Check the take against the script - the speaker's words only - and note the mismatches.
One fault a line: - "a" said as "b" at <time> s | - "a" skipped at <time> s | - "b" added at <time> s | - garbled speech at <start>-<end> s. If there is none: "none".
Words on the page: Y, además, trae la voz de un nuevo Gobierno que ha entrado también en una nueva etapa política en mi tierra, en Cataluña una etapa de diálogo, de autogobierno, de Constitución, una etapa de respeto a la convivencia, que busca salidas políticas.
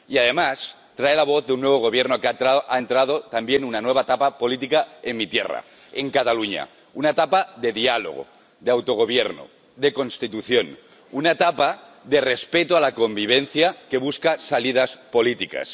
none